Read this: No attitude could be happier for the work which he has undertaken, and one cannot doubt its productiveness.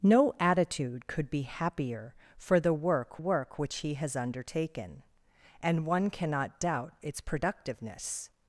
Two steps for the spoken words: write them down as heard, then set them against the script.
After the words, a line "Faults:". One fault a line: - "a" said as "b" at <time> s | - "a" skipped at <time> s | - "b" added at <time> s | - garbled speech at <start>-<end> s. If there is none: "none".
No attitude could be happier for the work work which he has undertaken, and one cannot doubt its productiveness.
Faults:
- "work" added at 3.2 s